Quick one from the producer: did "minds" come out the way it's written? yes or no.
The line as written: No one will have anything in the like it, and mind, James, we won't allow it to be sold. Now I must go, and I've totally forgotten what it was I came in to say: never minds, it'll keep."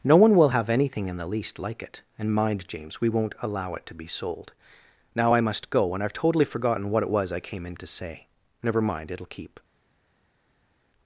no